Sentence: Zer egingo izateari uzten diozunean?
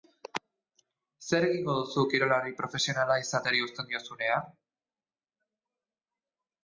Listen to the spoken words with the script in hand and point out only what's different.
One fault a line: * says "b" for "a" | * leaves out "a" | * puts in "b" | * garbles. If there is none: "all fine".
* puts in "duzu kirolari profesionala"